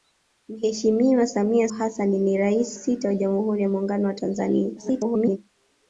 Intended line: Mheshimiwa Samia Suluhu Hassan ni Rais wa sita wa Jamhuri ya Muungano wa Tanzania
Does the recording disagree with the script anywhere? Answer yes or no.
yes